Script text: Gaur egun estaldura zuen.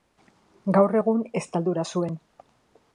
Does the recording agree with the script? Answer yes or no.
yes